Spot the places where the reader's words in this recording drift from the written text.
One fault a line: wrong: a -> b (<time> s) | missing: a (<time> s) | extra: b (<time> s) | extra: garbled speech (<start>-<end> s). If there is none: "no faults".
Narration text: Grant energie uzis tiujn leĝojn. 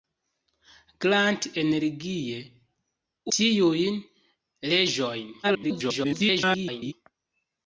missing: uzis (2.4 s)
extra: garbled speech (5.4-6.9 s)